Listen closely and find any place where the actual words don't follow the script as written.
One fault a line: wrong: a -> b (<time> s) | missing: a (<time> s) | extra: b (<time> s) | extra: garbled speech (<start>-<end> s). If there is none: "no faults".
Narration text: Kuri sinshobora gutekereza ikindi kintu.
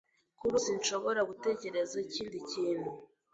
no faults